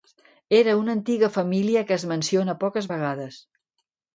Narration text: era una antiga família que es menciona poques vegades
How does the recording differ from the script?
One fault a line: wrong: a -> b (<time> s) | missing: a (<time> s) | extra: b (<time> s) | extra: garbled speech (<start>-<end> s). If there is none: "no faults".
no faults